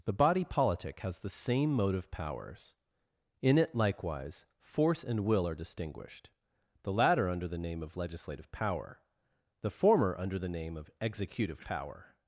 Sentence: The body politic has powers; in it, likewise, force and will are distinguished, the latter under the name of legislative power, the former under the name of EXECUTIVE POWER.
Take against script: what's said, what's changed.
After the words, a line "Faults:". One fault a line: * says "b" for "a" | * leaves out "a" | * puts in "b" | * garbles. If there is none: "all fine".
The body politic has the same motive powers; in it, likewise, force and will are distinguished, the latter under the name of legislative power, the former under the name of EXECUTIVE POWER.
Faults:
* puts in "the same motive"